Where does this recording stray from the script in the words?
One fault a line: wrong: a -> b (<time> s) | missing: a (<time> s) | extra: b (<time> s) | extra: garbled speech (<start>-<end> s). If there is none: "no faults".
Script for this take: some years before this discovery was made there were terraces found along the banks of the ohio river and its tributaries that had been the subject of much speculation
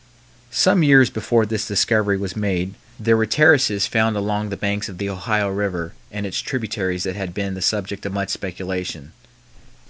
no faults